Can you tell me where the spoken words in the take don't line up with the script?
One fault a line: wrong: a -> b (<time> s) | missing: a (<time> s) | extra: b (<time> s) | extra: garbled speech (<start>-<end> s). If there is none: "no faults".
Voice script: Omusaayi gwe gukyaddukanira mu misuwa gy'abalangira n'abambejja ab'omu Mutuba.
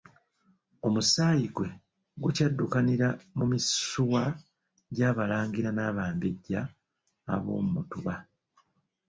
no faults